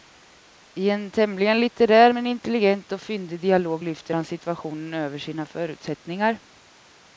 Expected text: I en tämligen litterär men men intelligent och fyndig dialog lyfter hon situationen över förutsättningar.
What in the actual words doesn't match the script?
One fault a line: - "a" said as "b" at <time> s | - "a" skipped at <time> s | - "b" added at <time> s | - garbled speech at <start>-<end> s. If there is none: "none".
- "men" skipped at 2.3 s
- "hon" said as "han" at 4.1 s
- "sina" added at 5.2 s